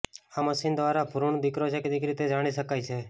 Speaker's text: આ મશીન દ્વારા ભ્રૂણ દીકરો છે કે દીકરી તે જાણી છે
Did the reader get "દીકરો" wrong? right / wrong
right